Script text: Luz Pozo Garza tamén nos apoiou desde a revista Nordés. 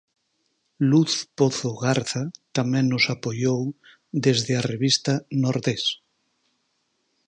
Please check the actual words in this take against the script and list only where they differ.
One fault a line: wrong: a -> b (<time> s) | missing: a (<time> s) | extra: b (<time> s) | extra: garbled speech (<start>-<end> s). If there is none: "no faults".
no faults